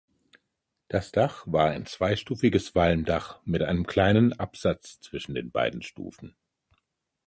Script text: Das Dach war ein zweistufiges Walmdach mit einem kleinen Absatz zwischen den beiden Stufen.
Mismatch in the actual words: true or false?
false